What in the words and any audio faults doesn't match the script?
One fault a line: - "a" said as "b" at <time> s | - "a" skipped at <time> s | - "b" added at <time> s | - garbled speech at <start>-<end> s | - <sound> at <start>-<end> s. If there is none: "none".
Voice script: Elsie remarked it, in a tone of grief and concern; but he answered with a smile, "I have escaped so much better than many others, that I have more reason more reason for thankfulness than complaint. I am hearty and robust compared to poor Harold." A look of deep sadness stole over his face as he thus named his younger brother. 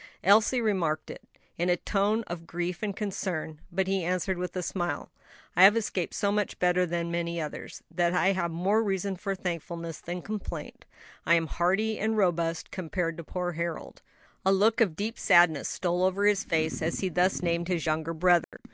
- "more reason" skipped at 9.2 s
- dropout at 18.4-18.5 s